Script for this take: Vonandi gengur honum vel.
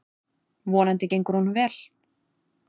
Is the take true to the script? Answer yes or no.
yes